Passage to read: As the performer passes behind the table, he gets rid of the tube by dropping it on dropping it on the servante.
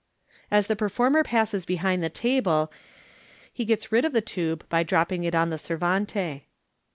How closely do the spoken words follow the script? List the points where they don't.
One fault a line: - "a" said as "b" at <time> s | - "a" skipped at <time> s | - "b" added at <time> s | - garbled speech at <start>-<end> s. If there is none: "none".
- "dropping it on" skipped at 5.5 s